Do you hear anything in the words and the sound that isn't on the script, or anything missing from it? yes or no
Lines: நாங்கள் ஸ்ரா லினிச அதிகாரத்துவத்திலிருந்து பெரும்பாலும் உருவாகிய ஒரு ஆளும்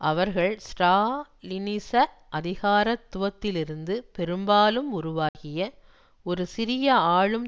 yes